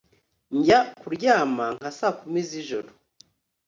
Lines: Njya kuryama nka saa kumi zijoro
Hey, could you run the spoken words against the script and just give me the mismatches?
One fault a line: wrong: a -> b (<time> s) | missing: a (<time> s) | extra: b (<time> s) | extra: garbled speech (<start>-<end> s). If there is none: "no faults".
no faults